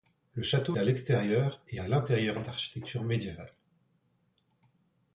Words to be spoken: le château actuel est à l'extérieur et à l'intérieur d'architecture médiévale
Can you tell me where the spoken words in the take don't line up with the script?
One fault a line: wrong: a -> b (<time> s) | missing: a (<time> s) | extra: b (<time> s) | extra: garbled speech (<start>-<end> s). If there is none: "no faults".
missing: actuel est (0.8 s)